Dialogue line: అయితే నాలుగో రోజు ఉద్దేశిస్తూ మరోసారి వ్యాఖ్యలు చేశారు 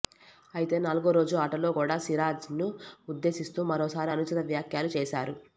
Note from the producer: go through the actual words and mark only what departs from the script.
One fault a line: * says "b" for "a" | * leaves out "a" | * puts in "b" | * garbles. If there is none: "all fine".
* puts in "ఆటలో కూడా సిరాజ్ను"
* puts in "అనుచిత"